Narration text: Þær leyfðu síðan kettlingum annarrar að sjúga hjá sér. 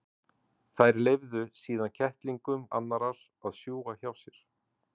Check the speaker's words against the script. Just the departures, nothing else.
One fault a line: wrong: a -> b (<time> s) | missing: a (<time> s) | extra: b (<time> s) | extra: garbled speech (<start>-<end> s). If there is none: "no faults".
no faults